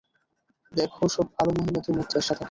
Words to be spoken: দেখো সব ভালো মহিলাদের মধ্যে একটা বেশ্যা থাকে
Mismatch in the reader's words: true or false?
true